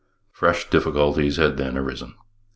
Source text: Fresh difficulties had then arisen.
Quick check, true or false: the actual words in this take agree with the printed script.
true